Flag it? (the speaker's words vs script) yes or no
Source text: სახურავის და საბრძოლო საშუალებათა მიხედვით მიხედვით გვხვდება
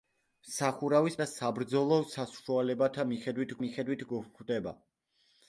no